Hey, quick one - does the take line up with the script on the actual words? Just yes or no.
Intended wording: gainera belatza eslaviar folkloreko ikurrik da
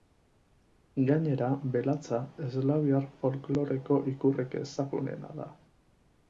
no